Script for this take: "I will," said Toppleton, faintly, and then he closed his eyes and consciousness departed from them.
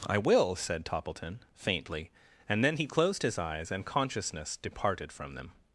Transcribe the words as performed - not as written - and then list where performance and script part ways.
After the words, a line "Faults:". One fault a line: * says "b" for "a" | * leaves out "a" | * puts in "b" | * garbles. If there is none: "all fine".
"I will," said Toppleton, faintly, and then he closed his eyes and consciousness departed from them.
Faults:
all fine